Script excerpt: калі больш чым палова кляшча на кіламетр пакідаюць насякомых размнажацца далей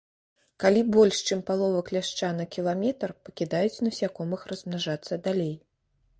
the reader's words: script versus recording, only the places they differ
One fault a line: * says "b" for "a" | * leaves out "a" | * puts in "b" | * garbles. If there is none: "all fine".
all fine